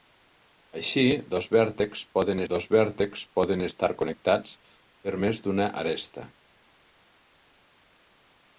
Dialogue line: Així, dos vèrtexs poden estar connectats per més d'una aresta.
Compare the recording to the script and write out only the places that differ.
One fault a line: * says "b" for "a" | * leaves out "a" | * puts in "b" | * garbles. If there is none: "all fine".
* puts in "dos vèrtexs poden"